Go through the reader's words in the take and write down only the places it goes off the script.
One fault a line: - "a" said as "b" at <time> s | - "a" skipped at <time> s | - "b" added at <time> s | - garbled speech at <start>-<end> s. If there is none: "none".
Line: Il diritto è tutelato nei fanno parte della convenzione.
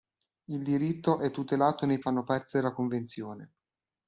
none